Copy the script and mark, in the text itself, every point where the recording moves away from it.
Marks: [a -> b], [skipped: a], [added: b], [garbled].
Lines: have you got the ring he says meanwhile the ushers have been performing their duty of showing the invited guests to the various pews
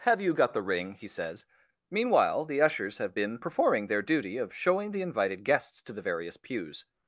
have you got the ring he says meanwhile the ushers have been performing their duty of showing the invited guests to the various pews